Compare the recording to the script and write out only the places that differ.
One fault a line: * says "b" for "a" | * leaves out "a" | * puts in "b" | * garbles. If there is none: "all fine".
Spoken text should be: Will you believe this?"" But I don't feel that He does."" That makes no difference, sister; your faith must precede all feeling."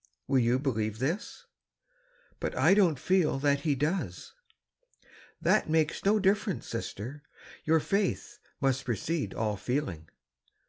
all fine